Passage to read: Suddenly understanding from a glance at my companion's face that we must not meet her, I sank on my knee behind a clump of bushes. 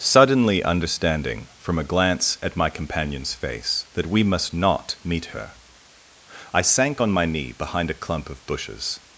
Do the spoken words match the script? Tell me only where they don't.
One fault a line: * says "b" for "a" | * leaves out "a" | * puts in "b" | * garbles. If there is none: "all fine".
all fine